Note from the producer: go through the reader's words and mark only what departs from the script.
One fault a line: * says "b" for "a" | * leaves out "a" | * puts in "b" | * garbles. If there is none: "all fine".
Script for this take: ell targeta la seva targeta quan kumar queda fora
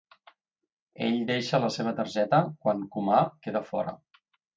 * says "deixa" for "targeta"